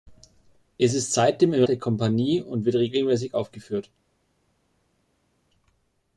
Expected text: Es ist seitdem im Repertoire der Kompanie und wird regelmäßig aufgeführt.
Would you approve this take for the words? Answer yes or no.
no